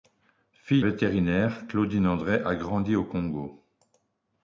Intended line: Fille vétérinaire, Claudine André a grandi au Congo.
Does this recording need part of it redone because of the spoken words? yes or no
no